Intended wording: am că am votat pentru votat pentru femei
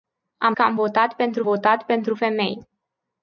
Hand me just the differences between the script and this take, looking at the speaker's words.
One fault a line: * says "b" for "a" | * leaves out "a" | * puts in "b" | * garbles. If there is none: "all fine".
all fine